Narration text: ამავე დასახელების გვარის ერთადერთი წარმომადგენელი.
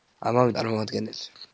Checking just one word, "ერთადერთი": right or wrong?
wrong